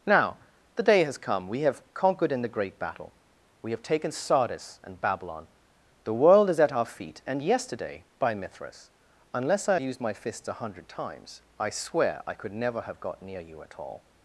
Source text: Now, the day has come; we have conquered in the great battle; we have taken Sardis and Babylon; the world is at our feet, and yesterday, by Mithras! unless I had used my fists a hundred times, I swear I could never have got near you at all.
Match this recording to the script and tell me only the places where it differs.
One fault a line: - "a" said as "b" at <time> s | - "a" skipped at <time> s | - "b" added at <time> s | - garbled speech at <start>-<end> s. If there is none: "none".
- "had" skipped at 9.8 s